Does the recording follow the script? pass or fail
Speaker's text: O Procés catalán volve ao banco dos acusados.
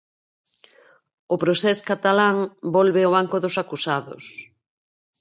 pass